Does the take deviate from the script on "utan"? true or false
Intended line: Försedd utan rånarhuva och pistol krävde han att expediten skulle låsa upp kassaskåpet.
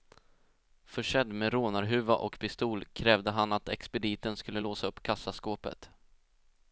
true